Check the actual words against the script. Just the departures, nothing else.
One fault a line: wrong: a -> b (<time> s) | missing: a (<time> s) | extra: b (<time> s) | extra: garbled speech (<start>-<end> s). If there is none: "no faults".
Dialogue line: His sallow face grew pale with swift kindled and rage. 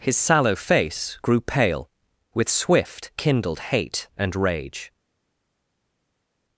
extra: hate (3.6 s)